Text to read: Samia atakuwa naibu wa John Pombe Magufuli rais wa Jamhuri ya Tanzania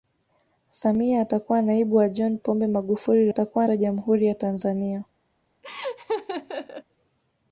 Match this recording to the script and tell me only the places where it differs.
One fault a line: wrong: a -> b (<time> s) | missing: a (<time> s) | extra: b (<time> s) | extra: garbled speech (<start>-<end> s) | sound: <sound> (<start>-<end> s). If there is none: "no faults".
wrong: rais -> atakuwa (3.3 s)
sound: laugh (5.6-6.8 s)